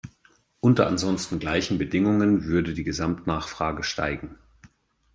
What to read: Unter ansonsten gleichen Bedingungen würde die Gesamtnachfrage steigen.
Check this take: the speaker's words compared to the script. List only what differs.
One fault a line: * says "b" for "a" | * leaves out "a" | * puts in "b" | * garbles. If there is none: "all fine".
all fine